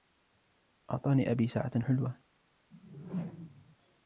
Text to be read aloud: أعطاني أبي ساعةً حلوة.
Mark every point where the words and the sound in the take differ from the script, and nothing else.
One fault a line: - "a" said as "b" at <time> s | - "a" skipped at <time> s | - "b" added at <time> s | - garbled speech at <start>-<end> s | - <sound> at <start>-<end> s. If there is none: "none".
- whoosh at 2.7-3.8 s